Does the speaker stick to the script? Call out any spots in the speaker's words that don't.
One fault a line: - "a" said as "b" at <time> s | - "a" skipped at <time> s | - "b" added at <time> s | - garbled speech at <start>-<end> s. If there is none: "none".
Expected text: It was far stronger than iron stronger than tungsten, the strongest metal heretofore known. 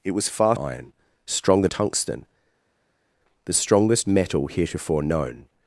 - "stronger than" skipped at 0.6 s
- "than" skipped at 1.7 s